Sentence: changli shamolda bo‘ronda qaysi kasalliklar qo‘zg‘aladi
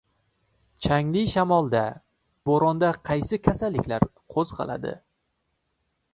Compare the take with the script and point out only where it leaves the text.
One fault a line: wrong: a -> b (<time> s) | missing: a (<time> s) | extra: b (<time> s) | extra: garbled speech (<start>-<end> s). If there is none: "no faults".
no faults